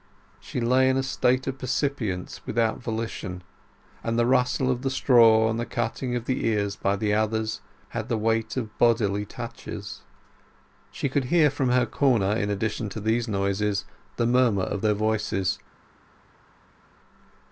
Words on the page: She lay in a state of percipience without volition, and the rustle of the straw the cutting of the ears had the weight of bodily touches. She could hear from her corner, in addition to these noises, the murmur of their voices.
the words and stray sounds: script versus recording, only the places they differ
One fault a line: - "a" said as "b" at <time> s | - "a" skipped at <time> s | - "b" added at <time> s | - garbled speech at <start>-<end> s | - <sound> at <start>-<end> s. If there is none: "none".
- "and" added at 5.5 s
- "by the others" added at 6.8 s